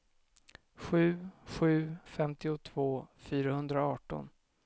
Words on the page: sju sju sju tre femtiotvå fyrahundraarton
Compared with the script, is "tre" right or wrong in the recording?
wrong